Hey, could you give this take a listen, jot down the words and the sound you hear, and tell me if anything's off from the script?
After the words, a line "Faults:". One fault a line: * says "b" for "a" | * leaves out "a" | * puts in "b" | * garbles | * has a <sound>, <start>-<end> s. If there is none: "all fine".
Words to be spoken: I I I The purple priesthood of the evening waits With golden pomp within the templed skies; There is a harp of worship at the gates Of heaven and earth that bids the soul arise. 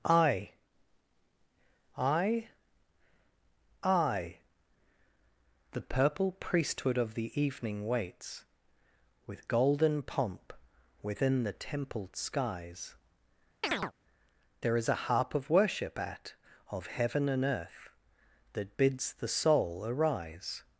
I I I The purple priesthood of the evening waits With golden pomp within the templed skies; There is a harp of worship at Of heaven and earth that bids the soul arise.
Faults:
* has a chirp, 13.6-13.9 s
* leaves out "the gates"